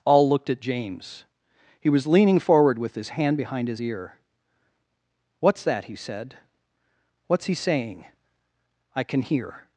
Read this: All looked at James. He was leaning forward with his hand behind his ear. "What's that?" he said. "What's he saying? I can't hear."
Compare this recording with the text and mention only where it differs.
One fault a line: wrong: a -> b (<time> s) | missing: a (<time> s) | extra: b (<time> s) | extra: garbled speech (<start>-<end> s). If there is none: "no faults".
wrong: can't -> can (9.0 s)